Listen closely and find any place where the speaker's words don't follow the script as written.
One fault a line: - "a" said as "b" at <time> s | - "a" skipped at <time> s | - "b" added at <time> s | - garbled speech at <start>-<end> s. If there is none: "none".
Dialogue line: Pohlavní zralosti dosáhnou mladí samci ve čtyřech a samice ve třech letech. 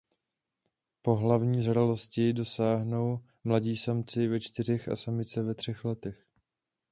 none